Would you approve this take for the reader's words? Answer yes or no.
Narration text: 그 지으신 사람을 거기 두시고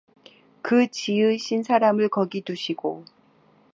yes